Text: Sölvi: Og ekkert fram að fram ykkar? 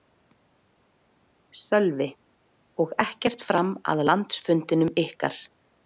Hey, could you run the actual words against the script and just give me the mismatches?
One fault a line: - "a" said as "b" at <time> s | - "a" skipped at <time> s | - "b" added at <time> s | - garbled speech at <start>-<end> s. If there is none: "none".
- "fram" said as "landsfundinum" at 4.1 s